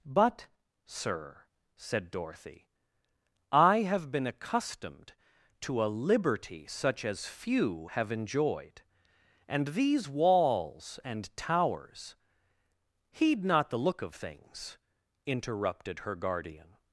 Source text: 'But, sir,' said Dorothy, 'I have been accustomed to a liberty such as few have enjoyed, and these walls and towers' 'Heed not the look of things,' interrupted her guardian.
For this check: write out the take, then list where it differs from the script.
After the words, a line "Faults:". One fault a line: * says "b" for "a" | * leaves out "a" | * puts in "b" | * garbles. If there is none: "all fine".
'But, sir,' said Dorothy, 'I have been accustomed to a liberty such as few have enjoyed, and these walls and towers' 'Heed not the look of things,' interrupted her guardian.
Faults:
all fine